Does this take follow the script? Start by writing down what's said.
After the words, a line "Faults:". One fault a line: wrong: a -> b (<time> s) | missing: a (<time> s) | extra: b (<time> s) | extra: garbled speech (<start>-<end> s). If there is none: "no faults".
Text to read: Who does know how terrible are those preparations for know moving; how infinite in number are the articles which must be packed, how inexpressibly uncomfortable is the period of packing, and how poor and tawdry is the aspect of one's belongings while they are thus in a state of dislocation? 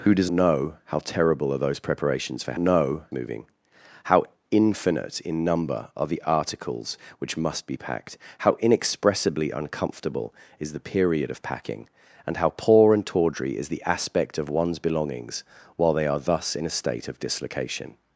Who does know how terrible are those preparations for know moving; how infinite in number are the articles which must be packed, how inexpressibly uncomfortable is the period of packing, and how poor and tawdry is the aspect of one's belongings while they are thus in a state of dislocation?
Faults:
no faults